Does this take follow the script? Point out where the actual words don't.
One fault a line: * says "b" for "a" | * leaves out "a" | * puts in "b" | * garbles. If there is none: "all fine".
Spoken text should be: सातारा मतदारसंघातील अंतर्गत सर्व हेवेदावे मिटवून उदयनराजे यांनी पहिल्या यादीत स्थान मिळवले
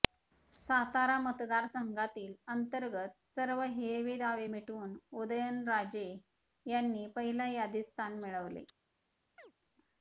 all fine